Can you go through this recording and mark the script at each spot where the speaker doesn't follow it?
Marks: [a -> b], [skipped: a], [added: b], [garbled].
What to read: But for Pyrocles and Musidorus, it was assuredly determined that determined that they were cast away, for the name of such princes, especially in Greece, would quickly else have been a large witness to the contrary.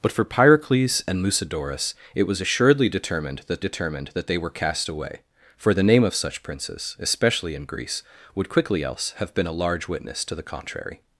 But for Pyrocles and Musidorus, it was assuredly determined that determined that they were cast away, for the name of such princes, especially in Greece, would quickly else have been a large witness to the contrary.